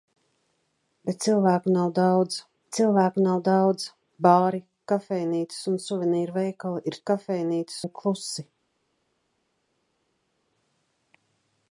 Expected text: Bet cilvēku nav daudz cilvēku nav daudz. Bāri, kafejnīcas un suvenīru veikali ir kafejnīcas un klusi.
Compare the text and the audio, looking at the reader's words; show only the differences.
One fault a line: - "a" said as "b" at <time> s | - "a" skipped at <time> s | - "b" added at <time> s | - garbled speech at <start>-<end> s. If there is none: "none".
none